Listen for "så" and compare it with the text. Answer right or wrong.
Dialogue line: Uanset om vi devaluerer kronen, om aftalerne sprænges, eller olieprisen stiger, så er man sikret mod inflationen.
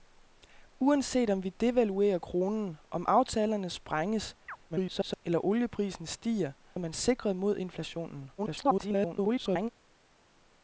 wrong